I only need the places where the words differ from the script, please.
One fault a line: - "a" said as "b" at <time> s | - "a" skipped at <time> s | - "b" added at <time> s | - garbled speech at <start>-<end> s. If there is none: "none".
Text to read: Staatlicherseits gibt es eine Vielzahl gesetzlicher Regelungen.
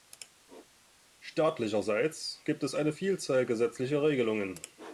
none